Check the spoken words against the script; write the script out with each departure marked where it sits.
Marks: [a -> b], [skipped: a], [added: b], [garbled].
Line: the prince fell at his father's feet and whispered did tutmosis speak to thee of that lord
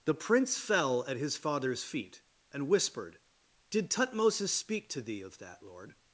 the prince fell at his father's feet and whispered did tutmosis speak to thee of that lord